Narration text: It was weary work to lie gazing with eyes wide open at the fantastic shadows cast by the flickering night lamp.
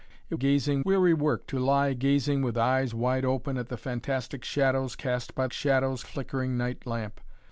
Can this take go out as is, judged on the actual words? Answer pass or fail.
fail